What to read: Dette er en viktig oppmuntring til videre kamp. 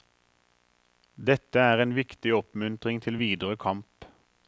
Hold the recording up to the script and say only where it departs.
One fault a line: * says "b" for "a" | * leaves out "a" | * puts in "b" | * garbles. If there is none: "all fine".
all fine